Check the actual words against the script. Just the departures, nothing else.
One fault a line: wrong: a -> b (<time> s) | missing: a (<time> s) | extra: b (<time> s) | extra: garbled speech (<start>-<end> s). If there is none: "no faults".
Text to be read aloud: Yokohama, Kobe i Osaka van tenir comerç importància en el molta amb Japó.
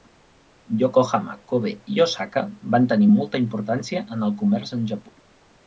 wrong: comerç -> molta (3.1 s)
wrong: molta -> comerç (4.4 s)